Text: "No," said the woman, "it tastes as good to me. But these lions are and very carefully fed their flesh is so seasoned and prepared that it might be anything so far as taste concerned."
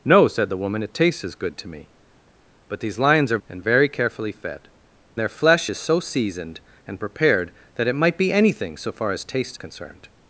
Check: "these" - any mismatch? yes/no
no